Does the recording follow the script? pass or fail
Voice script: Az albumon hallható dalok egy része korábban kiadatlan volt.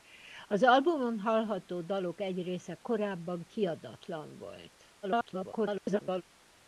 fail